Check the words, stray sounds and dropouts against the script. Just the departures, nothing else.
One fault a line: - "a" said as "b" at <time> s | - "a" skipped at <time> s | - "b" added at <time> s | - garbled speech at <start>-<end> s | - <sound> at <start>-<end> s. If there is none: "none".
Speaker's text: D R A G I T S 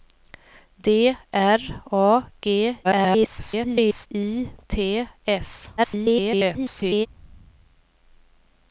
- garbled speech at 2.8-4.1 s
- garbled speech at 5.8-7.1 s